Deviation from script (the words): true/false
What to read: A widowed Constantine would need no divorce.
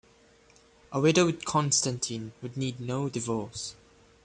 false